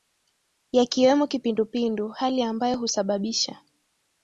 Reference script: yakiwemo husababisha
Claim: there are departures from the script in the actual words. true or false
true